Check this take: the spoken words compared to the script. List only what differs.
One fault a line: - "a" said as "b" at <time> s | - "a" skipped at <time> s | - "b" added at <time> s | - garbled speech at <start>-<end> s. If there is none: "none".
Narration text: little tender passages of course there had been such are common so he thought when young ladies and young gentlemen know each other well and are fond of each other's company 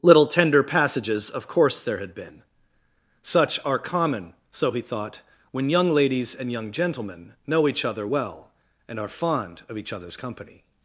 none